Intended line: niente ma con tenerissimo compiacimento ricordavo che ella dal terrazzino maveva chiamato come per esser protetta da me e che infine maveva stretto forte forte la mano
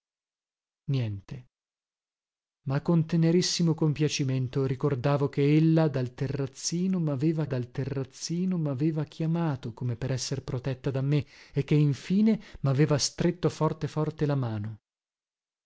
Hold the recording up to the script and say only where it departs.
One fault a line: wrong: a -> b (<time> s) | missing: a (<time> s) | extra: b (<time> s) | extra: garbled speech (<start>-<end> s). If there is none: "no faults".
extra: dal terrazzino maveva (7.4 s)